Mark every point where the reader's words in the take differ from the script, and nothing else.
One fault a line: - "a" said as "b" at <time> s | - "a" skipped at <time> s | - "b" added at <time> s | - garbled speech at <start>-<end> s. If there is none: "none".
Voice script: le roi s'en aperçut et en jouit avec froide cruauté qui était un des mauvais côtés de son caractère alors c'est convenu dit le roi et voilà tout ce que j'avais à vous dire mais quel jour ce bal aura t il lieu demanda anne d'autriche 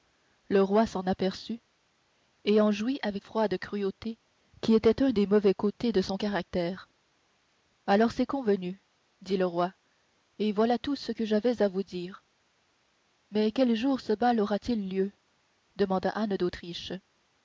none